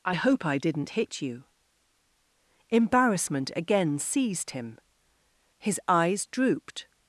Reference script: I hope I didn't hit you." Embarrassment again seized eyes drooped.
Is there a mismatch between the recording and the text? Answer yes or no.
yes